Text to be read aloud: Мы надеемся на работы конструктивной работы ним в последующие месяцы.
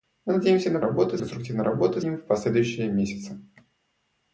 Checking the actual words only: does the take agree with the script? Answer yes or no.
yes